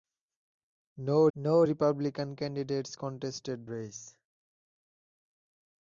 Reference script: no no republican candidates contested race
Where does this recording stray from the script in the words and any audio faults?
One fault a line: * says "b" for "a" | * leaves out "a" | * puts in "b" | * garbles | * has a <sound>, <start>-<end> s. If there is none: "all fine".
all fine